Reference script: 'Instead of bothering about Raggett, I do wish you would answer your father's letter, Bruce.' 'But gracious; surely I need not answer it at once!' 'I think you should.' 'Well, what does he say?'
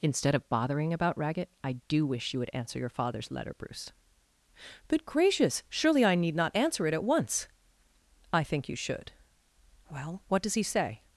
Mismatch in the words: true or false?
false